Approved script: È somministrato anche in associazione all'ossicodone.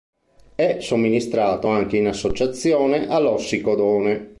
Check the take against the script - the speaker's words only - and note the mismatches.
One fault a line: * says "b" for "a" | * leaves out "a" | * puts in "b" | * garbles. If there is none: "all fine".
all fine